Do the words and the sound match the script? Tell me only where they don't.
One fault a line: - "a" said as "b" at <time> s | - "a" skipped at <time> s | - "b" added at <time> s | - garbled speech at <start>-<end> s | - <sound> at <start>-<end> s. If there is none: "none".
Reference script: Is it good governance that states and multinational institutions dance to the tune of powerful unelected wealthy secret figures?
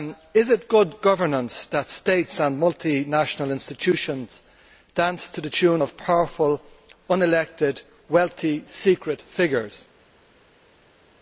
none